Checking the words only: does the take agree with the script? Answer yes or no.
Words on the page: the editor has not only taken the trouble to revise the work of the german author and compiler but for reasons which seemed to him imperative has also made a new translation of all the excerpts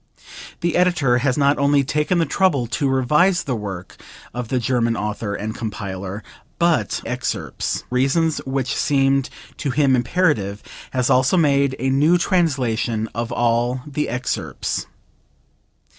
no